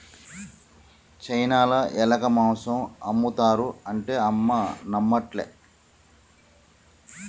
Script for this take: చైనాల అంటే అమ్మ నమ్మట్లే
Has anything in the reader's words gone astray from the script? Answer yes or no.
yes